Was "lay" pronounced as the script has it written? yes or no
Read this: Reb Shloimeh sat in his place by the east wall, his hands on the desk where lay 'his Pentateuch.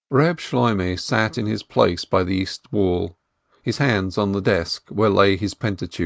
yes